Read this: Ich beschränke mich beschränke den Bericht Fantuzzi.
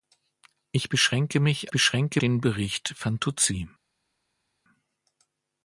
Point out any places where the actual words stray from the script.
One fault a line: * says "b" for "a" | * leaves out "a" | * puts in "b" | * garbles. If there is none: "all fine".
all fine